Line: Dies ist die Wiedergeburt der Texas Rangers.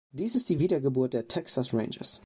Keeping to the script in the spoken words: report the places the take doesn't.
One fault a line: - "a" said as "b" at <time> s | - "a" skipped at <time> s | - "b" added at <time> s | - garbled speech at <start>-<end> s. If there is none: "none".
none